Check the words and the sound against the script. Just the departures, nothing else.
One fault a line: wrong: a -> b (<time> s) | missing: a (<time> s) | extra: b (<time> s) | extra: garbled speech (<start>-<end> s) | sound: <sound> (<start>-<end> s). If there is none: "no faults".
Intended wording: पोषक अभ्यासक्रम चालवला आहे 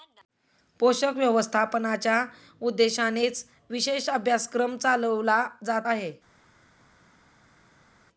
extra: व्यवस्थापनाच्या उद्देशानेच विशेष (1.1 s)
extra: जात (5.6 s)